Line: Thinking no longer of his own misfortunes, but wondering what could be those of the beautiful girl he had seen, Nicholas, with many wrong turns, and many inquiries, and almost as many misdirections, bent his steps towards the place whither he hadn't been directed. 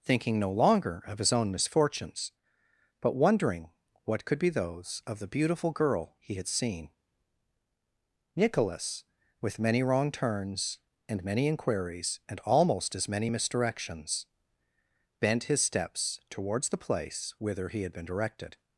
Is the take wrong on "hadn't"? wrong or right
wrong